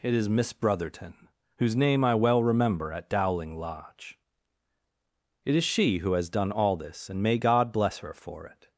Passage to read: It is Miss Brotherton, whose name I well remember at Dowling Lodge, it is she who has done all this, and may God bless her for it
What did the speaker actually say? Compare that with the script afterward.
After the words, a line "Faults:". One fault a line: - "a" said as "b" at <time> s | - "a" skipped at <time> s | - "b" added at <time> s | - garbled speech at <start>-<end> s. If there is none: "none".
It is Miss Brotherton, whose name I well remember at Dowling Lodge, it is she who has done all this, and may God bless her for it
Faults:
none